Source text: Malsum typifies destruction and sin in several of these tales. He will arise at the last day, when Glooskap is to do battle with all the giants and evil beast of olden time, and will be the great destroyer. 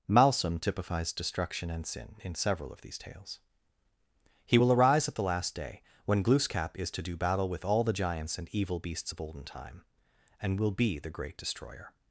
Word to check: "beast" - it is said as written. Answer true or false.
false